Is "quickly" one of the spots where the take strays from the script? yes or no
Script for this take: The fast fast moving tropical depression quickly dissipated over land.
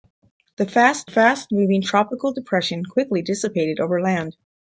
no